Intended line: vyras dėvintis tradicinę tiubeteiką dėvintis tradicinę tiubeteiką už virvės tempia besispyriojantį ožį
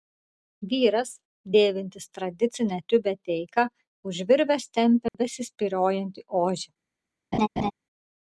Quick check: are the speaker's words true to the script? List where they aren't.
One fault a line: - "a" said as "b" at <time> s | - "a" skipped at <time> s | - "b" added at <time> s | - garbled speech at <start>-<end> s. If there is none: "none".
- "dėvintis tradicinę tiubeteiką" skipped at 3.7 s